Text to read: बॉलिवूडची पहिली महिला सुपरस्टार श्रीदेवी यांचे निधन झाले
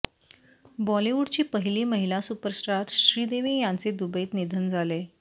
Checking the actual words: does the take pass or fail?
fail